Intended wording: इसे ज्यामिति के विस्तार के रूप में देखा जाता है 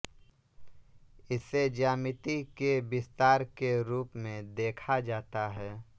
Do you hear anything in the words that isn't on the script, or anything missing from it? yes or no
no